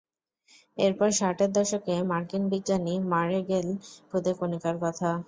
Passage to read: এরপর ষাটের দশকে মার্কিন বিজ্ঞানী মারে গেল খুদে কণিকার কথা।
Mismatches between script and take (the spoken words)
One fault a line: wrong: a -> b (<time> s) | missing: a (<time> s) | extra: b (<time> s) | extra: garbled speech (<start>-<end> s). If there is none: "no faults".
no faults